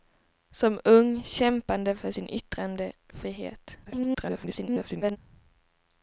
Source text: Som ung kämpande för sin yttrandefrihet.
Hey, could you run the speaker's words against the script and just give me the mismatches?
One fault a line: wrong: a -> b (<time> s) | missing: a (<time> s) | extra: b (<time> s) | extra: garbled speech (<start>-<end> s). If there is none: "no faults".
extra: garbled speech (3.8-5.2 s)